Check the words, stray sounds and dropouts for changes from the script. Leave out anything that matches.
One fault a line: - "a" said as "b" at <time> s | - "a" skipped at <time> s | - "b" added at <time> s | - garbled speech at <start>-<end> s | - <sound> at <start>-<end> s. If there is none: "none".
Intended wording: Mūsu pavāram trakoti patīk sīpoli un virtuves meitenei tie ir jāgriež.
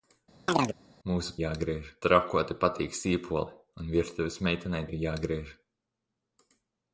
- chirp at 0.5-0.8 s
- "pavāram" said as "jāgriež" at 1.4 s
- "tie" skipped at 4.9 s